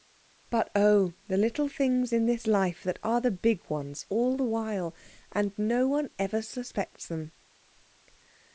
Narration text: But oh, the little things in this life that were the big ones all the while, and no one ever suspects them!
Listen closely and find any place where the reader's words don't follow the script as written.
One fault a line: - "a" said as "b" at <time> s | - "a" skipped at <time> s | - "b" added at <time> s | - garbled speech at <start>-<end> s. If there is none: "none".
- "were" said as "are" at 3.0 s